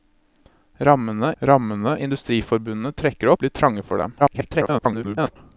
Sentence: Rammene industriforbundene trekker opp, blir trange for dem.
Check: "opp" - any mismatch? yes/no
yes